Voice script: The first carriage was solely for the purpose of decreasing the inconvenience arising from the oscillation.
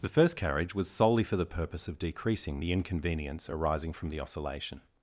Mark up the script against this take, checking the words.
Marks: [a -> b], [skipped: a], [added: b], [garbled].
The first carriage was solely for the purpose of decreasing the inconvenience arising from the oscillation.